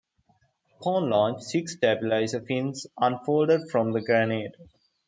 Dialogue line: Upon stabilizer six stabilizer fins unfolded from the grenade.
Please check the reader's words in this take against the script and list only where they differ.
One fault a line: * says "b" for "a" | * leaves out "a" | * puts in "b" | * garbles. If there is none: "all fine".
* says "launch" for "stabilizer"